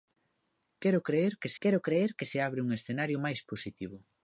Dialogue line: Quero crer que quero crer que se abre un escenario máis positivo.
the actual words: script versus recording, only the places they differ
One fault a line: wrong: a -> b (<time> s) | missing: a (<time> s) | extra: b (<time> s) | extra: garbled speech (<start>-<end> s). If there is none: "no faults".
no faults